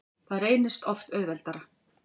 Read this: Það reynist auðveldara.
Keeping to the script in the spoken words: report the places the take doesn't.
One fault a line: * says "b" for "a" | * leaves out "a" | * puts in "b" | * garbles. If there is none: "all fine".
* puts in "oft"